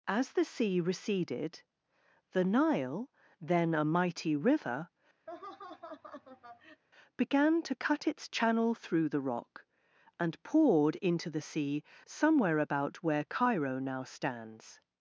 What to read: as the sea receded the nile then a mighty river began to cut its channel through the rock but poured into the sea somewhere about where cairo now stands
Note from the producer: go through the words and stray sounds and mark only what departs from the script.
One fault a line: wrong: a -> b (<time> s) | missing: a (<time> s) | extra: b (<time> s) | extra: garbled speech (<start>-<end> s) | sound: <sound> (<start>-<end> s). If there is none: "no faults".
sound: laugh (5.3-6.8 s)
wrong: but -> and (10.2 s)